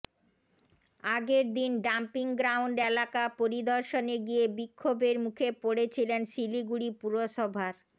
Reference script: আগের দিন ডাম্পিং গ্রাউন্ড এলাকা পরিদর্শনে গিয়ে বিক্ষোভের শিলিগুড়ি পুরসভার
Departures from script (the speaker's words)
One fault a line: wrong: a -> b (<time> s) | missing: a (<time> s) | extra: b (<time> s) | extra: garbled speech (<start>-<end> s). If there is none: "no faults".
extra: মুখে পড়েছিলেন (5.2 s)